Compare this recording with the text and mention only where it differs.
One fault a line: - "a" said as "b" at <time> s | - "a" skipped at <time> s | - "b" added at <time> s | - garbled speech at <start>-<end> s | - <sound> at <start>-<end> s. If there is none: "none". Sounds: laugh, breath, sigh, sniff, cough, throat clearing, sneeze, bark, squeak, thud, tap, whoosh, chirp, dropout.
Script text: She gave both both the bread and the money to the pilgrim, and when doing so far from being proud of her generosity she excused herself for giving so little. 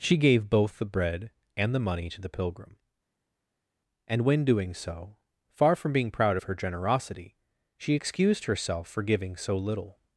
- "both" skipped at 0.8 s